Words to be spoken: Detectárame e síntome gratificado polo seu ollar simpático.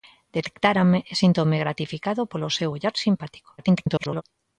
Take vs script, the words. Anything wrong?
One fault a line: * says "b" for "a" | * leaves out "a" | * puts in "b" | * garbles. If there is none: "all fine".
* garbles